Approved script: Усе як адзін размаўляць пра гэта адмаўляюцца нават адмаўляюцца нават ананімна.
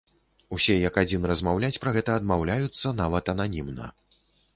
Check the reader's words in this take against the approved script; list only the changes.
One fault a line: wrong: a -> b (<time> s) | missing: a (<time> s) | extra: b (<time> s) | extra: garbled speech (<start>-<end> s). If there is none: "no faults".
missing: адмаўляюцца нават (3.3 s)